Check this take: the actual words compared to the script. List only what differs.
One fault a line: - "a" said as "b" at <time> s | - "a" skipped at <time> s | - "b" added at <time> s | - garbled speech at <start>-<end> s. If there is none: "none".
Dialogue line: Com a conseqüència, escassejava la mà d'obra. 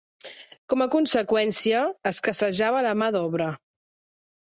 none